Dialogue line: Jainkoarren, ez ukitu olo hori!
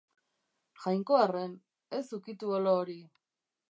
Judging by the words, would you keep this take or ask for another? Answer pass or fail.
pass